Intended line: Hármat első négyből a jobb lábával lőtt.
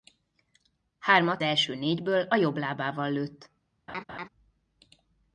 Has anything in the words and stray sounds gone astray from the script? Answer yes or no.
yes